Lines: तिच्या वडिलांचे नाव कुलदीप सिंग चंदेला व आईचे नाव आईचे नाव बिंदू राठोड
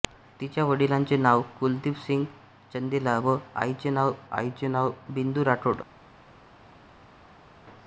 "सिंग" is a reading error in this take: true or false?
false